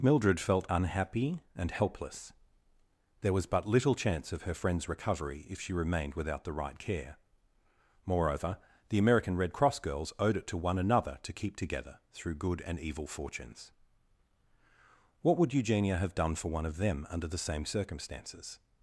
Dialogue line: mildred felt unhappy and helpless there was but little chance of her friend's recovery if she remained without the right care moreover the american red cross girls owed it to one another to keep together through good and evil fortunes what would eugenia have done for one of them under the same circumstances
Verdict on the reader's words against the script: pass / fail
pass